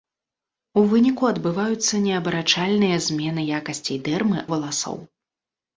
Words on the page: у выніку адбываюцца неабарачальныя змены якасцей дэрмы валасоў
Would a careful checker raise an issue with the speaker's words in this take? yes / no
no